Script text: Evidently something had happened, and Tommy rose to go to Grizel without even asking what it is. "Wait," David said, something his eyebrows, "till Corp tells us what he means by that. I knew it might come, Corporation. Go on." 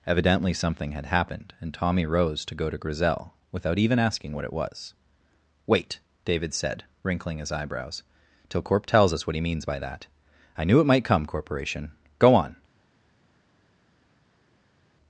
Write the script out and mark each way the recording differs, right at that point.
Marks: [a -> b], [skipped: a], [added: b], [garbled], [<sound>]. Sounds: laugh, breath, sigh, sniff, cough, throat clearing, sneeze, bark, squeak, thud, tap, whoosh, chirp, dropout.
Evidently something had happened, and Tommy rose to go to Grizel without even asking what it [is. -> was] "Wait," David said, [something -> wrinkling] his eyebrows, "till Corp tells us what he means by that. I knew it might come, Corporation. Go on."